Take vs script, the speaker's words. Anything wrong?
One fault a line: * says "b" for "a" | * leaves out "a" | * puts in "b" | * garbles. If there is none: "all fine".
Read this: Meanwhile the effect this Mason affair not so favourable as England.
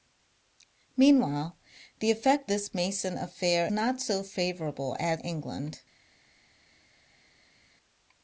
all fine